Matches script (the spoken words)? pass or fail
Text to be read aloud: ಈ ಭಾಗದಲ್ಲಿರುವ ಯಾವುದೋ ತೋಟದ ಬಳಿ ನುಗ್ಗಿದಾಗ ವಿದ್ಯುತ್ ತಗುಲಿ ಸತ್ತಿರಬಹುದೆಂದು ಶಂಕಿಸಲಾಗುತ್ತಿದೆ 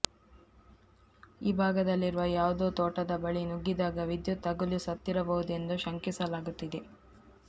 pass